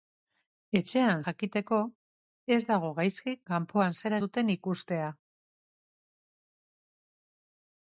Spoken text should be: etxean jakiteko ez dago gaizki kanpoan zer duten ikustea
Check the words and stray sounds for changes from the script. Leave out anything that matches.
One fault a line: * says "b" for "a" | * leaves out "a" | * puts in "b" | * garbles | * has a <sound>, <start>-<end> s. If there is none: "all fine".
all fine